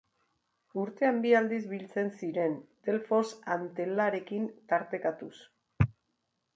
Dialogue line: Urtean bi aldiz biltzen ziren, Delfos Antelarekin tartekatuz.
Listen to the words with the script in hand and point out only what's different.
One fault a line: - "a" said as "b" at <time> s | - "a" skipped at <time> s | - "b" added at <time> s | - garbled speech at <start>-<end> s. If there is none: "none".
none